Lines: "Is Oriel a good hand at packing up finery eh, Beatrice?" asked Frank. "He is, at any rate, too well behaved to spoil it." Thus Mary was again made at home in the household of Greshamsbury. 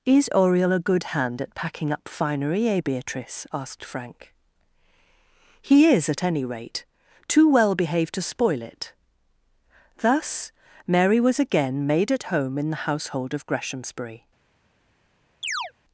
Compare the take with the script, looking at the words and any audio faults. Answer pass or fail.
fail